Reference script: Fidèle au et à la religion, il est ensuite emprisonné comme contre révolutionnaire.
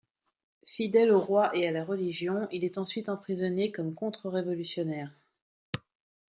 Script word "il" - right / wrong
right